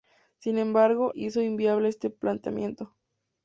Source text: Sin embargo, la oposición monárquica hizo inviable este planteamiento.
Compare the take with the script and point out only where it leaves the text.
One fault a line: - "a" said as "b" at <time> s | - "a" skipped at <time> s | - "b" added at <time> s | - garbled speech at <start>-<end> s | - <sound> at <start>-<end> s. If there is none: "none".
- "la oposición monárquica" skipped at 1.1 s